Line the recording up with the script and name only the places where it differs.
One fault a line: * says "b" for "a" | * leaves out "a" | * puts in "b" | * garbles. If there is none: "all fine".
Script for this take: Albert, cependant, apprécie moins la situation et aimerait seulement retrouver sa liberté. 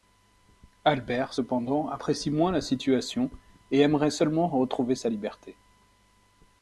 all fine